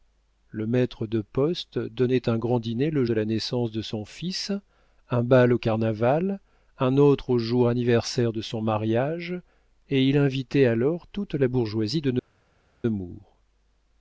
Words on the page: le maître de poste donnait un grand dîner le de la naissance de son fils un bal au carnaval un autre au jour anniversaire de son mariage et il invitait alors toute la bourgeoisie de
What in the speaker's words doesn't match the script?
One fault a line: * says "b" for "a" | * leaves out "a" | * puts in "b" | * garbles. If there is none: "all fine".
all fine